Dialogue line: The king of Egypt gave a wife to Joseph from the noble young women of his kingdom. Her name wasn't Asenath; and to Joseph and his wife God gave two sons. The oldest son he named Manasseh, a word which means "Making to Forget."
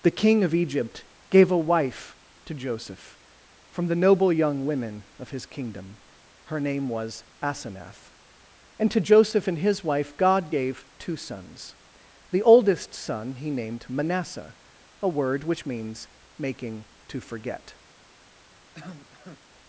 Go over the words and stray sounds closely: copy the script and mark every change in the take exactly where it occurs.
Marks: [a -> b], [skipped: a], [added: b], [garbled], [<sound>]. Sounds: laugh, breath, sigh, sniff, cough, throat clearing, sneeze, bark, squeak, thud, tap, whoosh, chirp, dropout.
The king of Egypt gave a wife to Joseph from the noble young women of his kingdom. Her name [wasn't -> was] Asenath; and to Joseph and his wife God gave two sons. The oldest son he named Manasseh, a word which means "Making to Forget." [cough]